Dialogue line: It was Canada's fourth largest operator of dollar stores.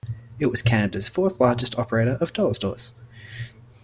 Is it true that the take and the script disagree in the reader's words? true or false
false